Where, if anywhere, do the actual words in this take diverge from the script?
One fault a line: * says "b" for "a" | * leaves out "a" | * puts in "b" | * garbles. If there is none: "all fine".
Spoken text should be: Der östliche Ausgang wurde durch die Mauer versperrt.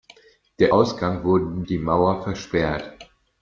* leaves out "östliche"
* leaves out "durch"